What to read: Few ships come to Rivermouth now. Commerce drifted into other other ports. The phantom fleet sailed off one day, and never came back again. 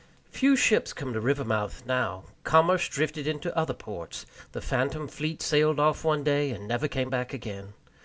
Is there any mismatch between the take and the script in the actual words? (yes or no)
yes